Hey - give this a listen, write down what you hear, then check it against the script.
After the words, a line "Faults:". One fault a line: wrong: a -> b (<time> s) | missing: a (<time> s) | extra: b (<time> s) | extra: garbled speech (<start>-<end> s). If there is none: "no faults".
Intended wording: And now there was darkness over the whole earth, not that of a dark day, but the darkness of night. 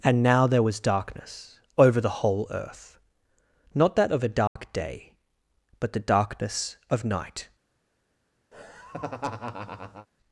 And now there was darkness over the whole earth, not that of a dark day, but the darkness of night.
Faults:
no faults